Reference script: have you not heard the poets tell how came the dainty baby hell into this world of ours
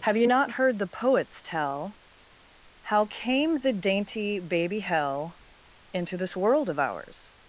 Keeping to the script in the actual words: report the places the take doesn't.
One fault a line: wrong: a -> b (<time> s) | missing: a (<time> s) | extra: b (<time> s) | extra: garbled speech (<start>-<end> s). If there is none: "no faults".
no faults